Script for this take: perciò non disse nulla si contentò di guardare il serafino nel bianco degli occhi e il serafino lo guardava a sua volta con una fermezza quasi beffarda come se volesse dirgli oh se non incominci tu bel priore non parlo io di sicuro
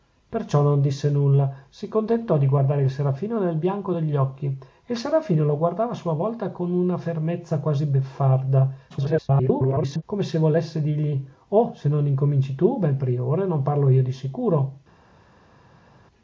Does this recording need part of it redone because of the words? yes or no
yes